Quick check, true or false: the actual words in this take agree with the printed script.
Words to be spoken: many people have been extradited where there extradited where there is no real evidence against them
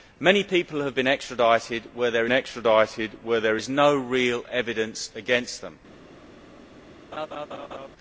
true